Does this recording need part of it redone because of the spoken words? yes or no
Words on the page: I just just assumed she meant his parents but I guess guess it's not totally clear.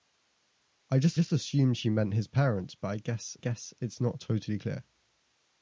no